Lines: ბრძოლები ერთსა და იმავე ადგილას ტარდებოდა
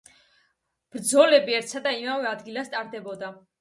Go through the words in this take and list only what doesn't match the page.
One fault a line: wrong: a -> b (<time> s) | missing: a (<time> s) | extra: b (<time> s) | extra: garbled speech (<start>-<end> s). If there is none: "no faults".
no faults